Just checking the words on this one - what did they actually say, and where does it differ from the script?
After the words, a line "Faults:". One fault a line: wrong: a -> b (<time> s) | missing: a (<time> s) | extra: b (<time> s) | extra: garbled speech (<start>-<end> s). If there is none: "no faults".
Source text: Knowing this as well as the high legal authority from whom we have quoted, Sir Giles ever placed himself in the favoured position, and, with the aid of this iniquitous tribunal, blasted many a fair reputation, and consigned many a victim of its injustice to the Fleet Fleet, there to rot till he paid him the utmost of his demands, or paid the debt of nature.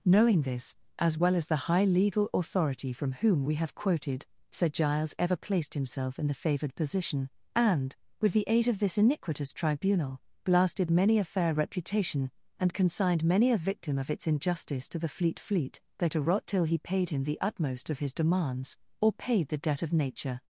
Knowing this as well as the high legal authority from whom we have quoted, Sir Giles ever placed himself in the favoured position, and, with the aid of this iniquitous tribunal, blasted many a fair reputation, and consigned many a victim of its injustice to the Fleet Fleet, there to rot till he paid him the utmost of his demands, or paid the debt of nature.
Faults:
no faults